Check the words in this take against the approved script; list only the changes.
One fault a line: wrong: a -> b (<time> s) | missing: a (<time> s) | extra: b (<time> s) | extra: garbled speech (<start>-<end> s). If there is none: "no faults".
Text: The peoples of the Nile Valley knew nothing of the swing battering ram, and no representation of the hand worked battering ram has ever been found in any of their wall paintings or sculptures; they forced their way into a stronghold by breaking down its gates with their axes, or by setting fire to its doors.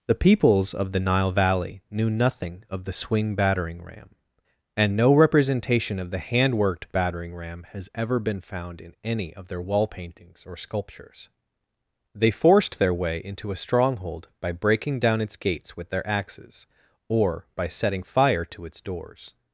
no faults